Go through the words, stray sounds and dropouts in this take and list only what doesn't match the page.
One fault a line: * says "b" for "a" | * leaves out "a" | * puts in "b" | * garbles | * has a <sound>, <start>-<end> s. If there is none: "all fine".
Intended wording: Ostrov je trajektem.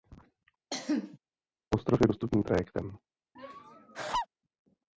* has a cough, 0.7-1.2 s
* puts in "dostupný"
* has a laugh, 3.4-4.3 s